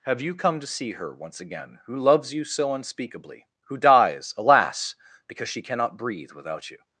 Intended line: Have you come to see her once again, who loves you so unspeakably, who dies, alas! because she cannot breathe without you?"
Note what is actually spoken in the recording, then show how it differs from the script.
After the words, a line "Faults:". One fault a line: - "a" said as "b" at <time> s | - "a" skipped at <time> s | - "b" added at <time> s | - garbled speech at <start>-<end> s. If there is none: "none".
Have you come to see her once again, who loves you so unspeakably, who dies, alas! because she cannot breathe without you?"
Faults:
none